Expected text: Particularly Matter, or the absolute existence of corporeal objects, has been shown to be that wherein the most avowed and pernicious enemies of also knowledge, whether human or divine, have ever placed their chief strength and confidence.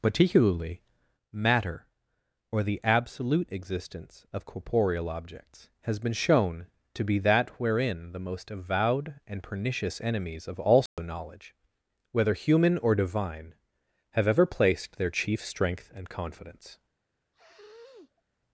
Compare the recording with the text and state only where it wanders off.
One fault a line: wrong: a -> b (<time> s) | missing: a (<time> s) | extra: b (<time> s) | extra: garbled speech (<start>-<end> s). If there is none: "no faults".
no faults